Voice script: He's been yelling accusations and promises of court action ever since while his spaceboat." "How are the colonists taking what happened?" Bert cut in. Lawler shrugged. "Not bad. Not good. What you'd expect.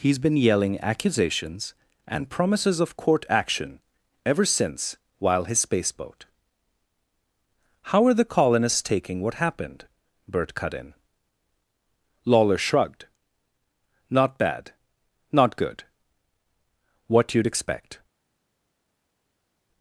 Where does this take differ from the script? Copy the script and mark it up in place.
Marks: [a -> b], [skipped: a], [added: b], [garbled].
He's been yelling accusations and promises of court action ever since while his spaceboat." "How are the colonists taking what happened?" Bert cut in. Lawler shrugged. "Not bad. Not good. What you'd expect.